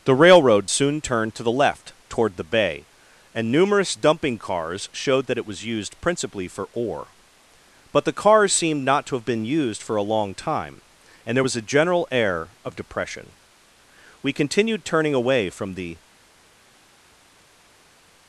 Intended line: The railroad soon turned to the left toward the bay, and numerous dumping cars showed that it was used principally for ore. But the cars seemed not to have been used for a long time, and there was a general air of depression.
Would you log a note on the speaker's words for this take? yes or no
yes